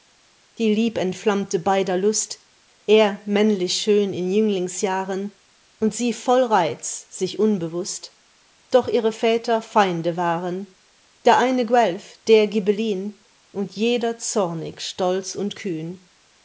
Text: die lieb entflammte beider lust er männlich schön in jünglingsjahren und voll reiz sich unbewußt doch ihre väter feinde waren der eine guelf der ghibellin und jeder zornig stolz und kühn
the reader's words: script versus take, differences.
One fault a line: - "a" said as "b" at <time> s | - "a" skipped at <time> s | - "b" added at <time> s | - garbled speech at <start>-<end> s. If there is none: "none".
- "sie" added at 5.9 s